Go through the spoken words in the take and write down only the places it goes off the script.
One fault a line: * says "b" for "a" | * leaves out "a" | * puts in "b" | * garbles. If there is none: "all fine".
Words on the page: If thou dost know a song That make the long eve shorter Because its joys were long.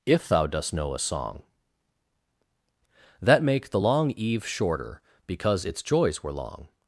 all fine